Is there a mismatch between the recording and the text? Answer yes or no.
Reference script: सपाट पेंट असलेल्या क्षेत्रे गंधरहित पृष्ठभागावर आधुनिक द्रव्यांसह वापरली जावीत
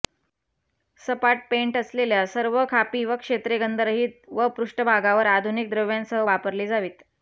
yes